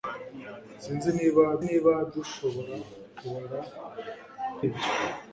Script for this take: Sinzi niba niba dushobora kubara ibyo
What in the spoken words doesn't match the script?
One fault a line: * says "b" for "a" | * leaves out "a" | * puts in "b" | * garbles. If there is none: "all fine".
all fine